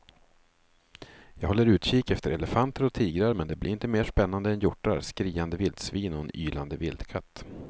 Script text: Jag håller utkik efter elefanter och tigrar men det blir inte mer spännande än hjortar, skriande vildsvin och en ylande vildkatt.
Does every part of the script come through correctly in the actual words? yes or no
yes